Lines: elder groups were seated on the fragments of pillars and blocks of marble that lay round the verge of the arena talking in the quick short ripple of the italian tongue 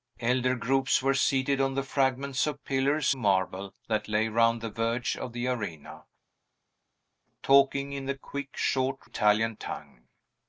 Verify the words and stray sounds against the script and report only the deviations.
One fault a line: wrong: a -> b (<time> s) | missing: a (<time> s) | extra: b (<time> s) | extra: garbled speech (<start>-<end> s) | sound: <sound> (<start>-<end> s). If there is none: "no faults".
missing: and blocks of (3.1 s)
missing: ripple of the (9.1 s)